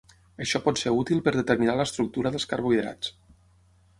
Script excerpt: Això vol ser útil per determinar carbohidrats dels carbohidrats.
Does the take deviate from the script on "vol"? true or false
true